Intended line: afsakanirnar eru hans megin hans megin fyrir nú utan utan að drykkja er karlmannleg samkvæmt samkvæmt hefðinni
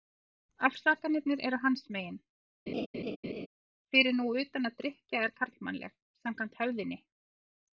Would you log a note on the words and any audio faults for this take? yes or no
yes